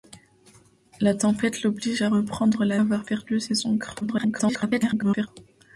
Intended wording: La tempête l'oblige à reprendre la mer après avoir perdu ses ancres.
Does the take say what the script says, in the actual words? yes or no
no